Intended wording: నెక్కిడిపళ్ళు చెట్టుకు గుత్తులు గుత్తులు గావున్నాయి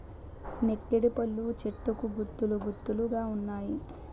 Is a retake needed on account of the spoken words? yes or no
no